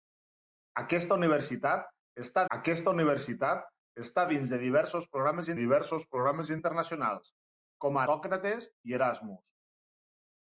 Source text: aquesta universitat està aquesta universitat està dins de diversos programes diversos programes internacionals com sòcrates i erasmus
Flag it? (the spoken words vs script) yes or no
no